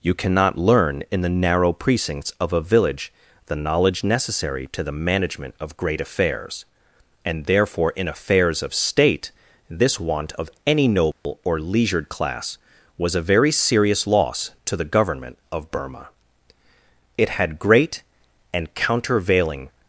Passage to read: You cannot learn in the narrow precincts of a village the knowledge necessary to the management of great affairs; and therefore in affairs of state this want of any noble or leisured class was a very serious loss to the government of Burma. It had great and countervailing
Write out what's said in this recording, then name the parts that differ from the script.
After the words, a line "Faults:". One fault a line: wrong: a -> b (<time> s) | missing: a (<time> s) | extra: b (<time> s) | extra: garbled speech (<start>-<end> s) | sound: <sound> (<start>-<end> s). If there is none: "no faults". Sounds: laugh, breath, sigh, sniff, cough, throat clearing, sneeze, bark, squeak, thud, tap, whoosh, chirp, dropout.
You cannot learn in the narrow precincts of a village the knowledge necessary to the management of great affairs; and therefore in affairs of state this want of any noble or leisured class was a very serious loss to the government of Burma. It had great and countervailing
Faults:
sound: dropout (11.1-11.3 s)